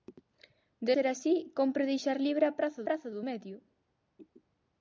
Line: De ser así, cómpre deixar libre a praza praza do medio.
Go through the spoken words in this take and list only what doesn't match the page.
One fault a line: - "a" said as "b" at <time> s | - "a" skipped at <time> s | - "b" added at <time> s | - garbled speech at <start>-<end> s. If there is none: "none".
none